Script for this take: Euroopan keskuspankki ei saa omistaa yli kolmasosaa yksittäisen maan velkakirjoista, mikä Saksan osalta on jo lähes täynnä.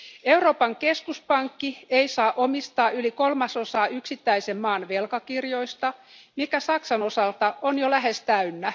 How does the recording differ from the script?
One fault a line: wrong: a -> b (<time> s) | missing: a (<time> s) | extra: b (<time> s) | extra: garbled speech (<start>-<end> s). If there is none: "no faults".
no faults